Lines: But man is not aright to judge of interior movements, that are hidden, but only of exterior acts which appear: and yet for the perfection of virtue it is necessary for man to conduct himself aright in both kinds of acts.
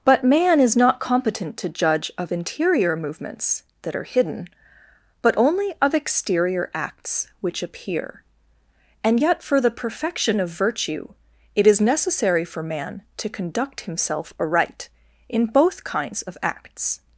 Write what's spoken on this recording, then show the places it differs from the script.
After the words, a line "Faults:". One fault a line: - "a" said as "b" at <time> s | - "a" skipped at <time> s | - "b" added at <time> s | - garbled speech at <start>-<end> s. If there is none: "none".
But man is not competent to judge of interior movements, that are hidden, but only of exterior acts which appear: and yet for the perfection of virtue it is necessary for man to conduct himself aright in both kinds of acts.
Faults:
- "aright" said as "competent" at 1.0 s